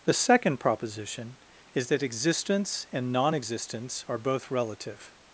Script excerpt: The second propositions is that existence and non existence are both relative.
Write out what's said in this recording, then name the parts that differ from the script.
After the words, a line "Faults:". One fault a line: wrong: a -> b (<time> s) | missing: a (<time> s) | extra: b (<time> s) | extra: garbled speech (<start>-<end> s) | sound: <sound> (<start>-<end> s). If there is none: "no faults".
The second proposition is that existence and non existence are both relative.
Faults:
wrong: propositions -> proposition (0.6 s)